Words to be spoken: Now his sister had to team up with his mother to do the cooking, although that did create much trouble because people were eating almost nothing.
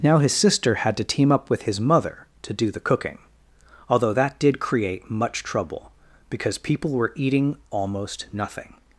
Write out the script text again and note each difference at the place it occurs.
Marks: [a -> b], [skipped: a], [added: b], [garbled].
Now his sister had to team up with his mother to do the cooking, although that did create much trouble because people were eating almost nothing.